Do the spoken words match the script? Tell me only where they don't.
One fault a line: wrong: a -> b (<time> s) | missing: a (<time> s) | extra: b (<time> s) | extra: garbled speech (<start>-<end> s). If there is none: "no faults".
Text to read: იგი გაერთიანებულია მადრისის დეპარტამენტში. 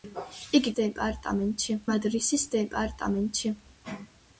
wrong: გაერთიანებულია -> დეპარტამენტში (0.8 s)